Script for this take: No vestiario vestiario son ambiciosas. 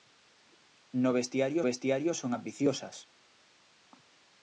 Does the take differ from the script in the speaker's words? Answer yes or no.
no